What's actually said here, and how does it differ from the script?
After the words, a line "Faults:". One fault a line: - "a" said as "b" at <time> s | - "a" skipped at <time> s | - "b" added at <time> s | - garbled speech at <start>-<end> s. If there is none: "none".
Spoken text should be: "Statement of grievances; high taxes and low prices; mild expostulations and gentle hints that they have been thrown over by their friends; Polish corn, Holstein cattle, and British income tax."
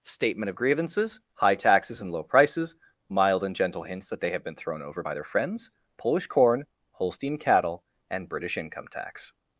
"Statement of grievances; high taxes and low prices; mild and gentle hints that they have been thrown over by their friends; Polish corn, Holstein cattle, and British income tax."
Faults:
- "expostulations" skipped at 3.4 s